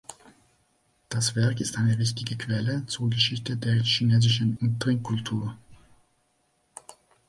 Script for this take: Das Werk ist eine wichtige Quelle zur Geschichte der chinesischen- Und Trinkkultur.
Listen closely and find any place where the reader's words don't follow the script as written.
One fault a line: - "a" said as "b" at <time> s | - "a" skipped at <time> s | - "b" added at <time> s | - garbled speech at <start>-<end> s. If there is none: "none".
none